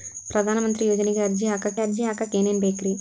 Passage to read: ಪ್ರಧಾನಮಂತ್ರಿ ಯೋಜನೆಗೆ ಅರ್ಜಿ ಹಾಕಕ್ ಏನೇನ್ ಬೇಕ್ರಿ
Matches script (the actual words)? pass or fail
fail